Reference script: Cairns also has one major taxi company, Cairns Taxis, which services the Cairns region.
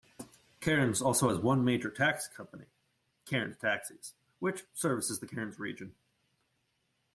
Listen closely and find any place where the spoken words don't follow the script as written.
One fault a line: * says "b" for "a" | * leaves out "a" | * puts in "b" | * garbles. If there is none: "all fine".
all fine